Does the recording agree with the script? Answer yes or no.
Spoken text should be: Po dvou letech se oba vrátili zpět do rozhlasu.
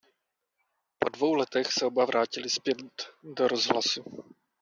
yes